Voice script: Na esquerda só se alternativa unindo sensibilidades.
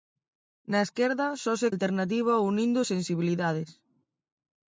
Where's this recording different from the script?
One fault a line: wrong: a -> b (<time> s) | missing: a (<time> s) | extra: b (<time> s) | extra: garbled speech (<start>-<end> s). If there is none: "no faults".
no faults